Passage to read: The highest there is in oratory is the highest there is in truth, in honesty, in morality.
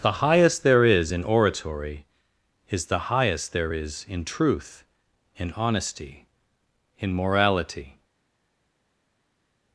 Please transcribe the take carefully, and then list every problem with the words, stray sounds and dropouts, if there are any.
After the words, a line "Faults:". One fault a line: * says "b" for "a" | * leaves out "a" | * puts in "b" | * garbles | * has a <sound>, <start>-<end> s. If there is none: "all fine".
The highest there is in oratory is the highest there is in truth, in honesty, in morality.
Faults:
all fine